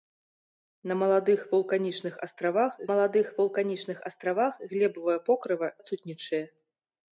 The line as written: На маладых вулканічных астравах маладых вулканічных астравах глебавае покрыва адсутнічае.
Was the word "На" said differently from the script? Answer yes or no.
no